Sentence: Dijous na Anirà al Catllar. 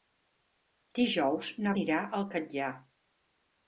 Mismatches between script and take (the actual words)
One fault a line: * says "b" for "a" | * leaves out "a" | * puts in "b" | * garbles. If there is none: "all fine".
all fine